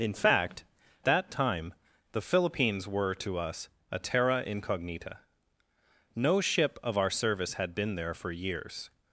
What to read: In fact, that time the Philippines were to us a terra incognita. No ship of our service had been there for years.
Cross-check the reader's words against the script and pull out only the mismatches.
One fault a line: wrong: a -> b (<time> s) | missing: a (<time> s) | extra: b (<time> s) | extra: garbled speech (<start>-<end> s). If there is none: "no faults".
no faults